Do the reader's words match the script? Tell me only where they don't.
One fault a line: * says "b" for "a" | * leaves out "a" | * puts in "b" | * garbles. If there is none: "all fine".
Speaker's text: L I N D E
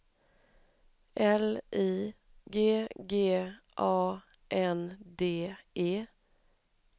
* puts in "G G A"